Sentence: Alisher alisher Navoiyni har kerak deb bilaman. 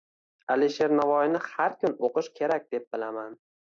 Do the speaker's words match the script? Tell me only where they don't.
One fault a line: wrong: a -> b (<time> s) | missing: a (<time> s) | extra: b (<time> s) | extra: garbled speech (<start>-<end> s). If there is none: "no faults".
missing: alisher (0.9 s)
extra: kun o‘qish (1.9 s)